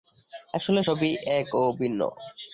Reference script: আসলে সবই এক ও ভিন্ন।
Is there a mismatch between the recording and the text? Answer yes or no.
no